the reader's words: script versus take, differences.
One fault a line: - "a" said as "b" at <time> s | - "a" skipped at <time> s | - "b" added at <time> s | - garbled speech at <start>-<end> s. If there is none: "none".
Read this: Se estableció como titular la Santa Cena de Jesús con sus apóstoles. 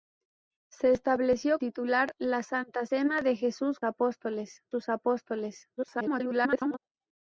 - "como" skipped at 1.6 s
- "con" said as "apóstoles" at 3.8 s
- garbled speech at 5.8-6.8 s